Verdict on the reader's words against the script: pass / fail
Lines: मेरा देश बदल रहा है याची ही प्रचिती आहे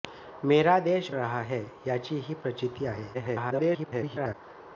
fail